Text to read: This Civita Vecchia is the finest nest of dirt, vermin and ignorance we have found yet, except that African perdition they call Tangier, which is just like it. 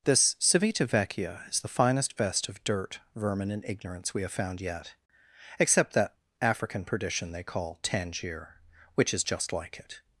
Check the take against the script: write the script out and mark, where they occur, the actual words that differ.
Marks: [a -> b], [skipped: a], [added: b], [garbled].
This Civita Vecchia is the finest [nest -> vest] of dirt, vermin and ignorance we have found yet, except that African perdition they call Tangier, which is just like it.